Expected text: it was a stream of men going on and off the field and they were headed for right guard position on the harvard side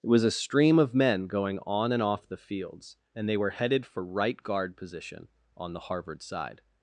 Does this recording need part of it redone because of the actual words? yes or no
yes